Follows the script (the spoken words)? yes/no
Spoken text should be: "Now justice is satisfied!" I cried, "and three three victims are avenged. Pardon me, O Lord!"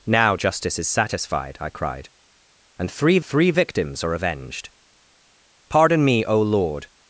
yes